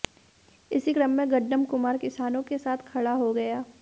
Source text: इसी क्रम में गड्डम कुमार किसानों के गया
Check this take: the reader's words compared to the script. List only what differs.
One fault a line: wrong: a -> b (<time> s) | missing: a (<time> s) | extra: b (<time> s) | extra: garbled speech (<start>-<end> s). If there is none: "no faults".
extra: साथ खड़ा हो (2.6 s)